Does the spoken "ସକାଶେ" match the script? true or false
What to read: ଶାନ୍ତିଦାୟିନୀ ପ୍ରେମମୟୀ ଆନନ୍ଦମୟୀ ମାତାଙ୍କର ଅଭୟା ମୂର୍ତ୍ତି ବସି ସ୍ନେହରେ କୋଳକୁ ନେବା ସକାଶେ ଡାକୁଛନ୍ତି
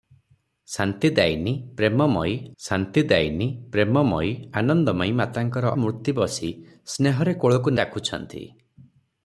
false